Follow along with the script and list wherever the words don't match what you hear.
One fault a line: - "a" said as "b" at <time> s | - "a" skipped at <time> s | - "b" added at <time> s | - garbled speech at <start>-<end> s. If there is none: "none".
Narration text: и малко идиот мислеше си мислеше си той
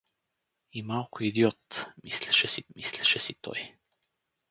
none